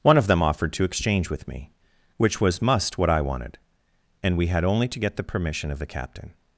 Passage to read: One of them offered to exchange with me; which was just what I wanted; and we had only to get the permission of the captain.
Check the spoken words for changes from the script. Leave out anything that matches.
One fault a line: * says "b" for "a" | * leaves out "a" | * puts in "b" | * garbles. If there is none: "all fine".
* says "must" for "just"